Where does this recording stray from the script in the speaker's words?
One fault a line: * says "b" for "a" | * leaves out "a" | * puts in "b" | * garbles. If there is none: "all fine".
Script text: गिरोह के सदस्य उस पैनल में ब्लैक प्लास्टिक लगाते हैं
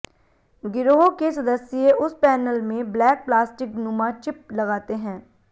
* puts in "नुमा चिप"